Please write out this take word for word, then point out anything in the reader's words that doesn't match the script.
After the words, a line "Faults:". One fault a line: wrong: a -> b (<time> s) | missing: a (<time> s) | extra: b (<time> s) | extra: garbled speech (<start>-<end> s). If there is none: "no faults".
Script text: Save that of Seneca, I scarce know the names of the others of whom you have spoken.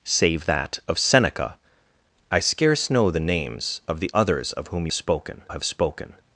Save that of Seneca, I scarce know the names of the others of whom spoken have spoken.
Faults:
wrong: you -> spoken (4.9 s)